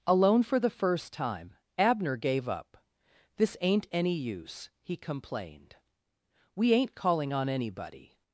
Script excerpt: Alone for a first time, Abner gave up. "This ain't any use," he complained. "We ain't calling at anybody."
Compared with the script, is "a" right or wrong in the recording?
wrong